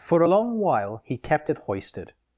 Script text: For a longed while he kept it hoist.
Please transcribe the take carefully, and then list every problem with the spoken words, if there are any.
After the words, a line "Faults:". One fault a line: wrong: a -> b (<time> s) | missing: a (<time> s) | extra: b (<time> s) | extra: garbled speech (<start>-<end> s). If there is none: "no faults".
For a long while he kept it hoisted.
Faults:
wrong: longed -> long (0.2 s)
wrong: hoist -> hoisted (1.6 s)